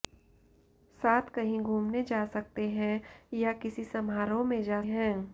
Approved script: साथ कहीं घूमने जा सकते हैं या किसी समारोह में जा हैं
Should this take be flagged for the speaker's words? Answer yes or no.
no